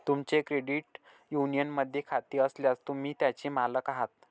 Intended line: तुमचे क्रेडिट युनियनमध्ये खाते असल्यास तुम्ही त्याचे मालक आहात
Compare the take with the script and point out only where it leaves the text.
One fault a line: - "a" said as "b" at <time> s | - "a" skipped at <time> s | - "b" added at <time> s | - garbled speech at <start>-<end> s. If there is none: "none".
none